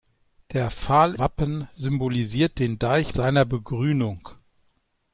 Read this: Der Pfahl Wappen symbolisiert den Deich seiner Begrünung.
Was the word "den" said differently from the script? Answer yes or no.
no